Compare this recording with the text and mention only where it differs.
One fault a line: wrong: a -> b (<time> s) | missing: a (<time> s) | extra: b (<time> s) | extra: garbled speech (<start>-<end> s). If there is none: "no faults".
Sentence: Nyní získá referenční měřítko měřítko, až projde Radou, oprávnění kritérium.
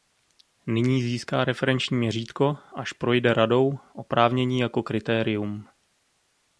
missing: měřítko (2.6 s)
extra: jako (4.6 s)